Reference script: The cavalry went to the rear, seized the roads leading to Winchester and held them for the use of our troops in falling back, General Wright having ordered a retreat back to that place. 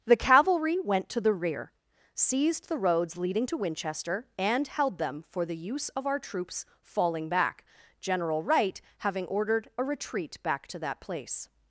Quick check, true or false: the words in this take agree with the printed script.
false